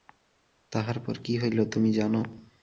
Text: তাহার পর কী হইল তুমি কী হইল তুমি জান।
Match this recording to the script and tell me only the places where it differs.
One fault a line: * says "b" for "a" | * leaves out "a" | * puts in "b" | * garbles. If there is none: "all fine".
* leaves out "কী হইল তুমি"